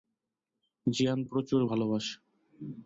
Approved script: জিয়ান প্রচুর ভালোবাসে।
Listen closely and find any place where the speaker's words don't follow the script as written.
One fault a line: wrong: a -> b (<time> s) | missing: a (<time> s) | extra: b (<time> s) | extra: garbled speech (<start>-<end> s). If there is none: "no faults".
no faults